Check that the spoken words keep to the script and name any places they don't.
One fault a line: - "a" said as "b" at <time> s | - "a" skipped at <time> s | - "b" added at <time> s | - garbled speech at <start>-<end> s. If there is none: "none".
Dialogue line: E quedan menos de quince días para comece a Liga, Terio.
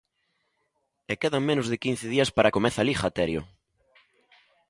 none